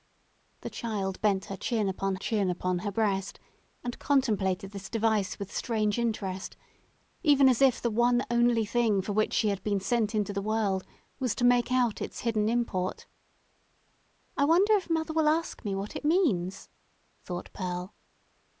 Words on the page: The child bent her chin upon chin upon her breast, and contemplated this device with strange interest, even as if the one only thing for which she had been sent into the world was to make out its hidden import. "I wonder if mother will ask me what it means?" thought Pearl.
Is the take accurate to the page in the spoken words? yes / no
yes